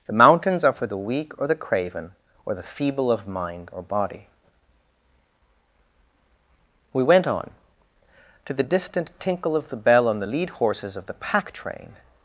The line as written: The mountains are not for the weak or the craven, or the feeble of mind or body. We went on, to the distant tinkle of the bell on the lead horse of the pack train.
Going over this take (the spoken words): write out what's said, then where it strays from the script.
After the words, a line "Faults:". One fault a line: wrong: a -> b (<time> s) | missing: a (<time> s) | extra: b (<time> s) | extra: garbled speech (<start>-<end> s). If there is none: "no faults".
The mountains are for the weak or the craven, or the feeble of mind or body. We went on, to the distant tinkle of the bell on the lead horses of the pack train.
Faults:
missing: not (0.7 s)
wrong: horse -> horses (10.5 s)